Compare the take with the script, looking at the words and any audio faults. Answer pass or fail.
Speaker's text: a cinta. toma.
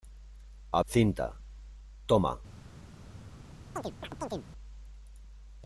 fail